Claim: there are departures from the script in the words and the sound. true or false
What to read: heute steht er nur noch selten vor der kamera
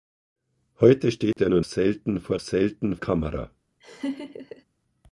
true